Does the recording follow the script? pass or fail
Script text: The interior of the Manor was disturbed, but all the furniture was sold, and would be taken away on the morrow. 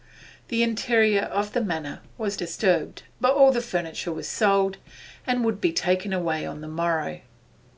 pass